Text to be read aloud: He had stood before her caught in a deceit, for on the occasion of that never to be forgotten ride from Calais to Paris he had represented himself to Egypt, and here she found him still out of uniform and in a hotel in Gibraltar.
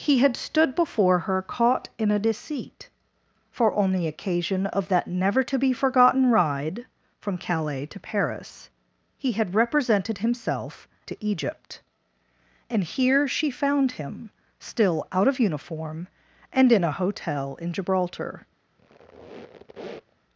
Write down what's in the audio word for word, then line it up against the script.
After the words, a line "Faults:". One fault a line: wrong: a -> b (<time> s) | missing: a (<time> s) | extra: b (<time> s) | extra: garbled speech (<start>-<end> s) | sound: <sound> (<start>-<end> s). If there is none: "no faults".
He had stood before her caught in a deceit, for on the occasion of that never to be forgotten ride from Calais to Paris he had represented himself to Egypt, and here she found him still out of uniform and in a hotel in Gibraltar.
Faults:
sound: squeak (18.8-20.2 s)